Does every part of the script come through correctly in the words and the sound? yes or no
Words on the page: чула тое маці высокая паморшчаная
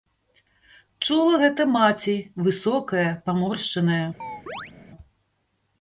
no